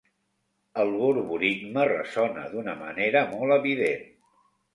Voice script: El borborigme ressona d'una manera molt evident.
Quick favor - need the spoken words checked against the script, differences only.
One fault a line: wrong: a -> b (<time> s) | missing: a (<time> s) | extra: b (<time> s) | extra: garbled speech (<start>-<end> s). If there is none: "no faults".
no faults